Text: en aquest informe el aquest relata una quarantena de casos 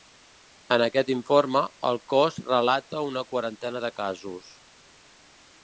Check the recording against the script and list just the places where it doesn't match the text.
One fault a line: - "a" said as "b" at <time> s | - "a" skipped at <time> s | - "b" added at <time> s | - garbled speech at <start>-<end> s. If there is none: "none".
- "aquest" said as "cos" at 2.1 s